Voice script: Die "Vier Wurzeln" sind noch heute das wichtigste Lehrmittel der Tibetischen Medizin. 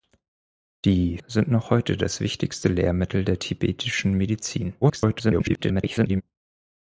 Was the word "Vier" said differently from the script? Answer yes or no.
yes